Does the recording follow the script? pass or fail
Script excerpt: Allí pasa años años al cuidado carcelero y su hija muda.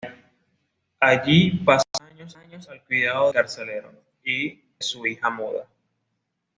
pass